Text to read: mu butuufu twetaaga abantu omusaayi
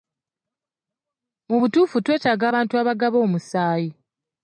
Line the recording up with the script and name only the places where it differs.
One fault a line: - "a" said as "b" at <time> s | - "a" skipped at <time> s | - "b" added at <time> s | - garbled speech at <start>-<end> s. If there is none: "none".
- "abagaba" added at 2.8 s